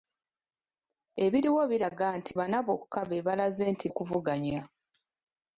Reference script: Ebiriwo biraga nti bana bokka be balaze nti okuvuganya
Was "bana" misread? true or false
false